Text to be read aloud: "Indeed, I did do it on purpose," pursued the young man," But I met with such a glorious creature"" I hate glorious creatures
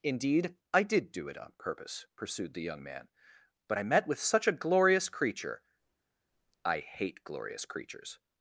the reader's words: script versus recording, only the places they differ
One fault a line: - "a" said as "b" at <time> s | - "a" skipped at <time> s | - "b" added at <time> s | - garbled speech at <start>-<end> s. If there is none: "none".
none